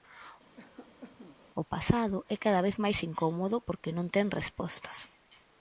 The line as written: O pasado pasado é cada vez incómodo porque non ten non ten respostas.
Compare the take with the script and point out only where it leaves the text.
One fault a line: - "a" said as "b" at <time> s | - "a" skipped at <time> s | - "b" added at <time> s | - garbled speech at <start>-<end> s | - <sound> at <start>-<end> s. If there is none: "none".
- cough at 0.6-1.4 s
- "pasado" skipped at 2.2 s
- "máis" added at 2.8 s
- "non ten" skipped at 4.3 s